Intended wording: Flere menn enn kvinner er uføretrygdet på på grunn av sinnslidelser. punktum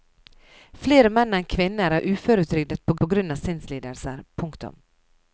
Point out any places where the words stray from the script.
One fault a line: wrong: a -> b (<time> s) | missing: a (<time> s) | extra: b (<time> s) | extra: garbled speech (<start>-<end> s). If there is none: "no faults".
no faults